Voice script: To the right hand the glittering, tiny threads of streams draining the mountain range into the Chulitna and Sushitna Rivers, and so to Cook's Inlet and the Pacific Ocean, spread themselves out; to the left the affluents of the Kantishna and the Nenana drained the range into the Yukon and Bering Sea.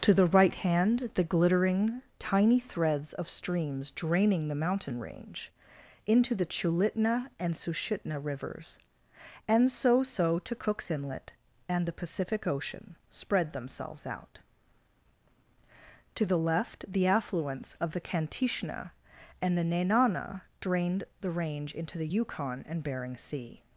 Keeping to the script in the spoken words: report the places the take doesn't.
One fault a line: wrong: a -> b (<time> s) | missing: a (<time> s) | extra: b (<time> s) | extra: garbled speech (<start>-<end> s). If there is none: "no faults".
extra: so (10.0 s)